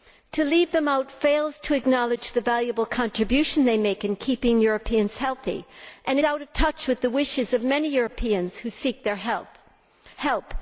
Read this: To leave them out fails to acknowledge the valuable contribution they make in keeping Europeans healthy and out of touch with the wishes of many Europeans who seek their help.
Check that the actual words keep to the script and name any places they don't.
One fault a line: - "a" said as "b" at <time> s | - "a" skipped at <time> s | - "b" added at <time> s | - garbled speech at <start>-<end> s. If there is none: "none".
none